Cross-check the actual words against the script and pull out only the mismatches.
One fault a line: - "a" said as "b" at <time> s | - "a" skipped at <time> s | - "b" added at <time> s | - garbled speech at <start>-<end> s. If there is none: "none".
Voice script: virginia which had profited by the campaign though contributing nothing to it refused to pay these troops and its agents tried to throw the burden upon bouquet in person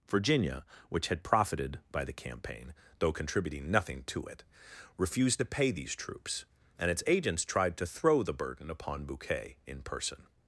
none